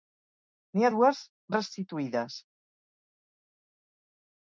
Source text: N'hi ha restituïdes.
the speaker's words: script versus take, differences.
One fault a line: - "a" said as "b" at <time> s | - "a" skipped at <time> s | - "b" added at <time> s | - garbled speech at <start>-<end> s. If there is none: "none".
- "dues" added at 1.0 s